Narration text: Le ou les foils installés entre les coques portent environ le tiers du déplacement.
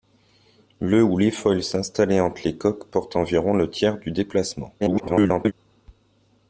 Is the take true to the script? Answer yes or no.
no